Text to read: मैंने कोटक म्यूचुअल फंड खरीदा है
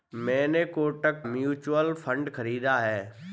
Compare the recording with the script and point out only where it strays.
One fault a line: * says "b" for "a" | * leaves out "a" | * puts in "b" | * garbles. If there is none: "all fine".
all fine